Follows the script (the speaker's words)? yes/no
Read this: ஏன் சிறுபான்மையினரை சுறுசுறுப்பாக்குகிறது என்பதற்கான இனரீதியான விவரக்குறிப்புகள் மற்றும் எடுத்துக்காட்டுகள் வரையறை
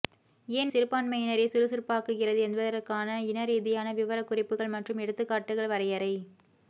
yes